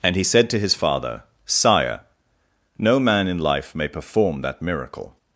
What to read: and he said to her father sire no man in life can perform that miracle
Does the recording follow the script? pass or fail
fail